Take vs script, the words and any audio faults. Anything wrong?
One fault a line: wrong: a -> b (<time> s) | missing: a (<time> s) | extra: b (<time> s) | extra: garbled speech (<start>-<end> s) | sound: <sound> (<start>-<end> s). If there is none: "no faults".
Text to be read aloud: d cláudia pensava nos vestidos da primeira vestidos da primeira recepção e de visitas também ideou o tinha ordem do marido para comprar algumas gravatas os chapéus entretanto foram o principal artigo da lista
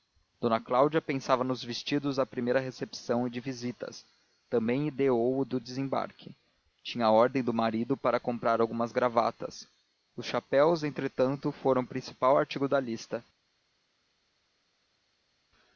missing: vestidos da primeira (2.6 s)
extra: do desembarque (5.5 s)